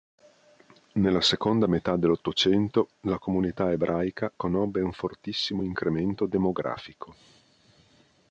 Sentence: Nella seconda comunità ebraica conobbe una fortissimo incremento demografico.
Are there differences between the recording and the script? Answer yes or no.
yes